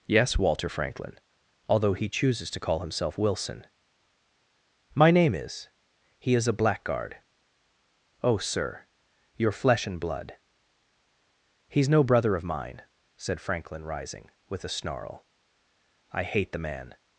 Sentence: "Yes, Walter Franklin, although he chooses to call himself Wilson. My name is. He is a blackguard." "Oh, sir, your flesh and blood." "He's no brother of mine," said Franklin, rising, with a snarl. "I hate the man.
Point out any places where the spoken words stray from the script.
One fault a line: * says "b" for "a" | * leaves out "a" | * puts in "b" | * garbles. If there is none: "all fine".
all fine